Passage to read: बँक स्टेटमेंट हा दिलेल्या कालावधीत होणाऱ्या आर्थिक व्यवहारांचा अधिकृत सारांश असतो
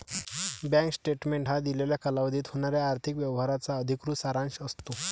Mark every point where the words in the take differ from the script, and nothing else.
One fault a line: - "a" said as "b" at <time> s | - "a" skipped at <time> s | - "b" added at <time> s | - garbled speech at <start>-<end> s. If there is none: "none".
none